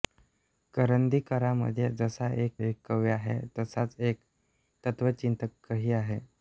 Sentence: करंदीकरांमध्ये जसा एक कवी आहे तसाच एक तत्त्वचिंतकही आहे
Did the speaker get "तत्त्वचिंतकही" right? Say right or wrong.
right